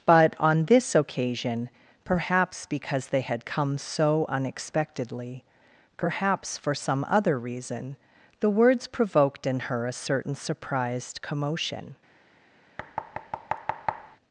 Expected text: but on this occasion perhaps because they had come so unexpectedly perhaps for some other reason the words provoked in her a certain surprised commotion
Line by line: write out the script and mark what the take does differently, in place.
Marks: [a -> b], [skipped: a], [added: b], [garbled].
but on this occasion perhaps because they had come so unexpectedly perhaps for some other reason the words provoked in her a certain surprised commotion